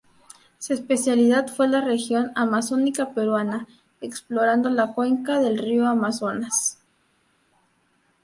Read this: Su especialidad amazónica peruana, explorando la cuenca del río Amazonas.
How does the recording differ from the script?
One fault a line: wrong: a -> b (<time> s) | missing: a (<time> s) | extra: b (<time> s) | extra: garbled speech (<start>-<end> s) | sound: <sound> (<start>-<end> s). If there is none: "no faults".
extra: fue la región (1.6 s)